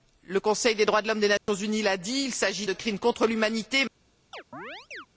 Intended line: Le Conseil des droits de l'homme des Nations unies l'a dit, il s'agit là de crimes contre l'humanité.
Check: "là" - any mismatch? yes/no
yes